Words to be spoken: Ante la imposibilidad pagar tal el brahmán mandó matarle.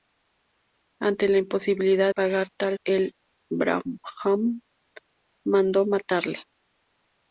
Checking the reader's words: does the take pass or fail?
pass